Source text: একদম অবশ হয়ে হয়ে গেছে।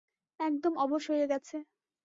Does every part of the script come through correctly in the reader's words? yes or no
no